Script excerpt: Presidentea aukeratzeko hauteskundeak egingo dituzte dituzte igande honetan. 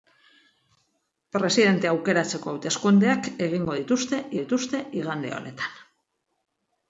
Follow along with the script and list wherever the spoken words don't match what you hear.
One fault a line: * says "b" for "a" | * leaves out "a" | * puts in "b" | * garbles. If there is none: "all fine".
all fine